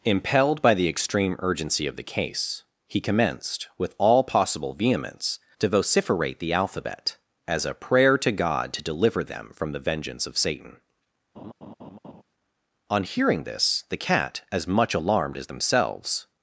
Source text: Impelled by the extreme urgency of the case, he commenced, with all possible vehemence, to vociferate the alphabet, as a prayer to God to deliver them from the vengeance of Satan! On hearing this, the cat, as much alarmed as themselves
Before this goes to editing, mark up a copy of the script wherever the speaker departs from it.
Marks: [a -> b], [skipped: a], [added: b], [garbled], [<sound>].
Impelled by the extreme urgency of the case, he commenced, with all possible vehemence, to vociferate the alphabet, as a prayer to God to deliver them from the vengeance of Satan! [laugh] On hearing this, the cat, as much alarmed as themselves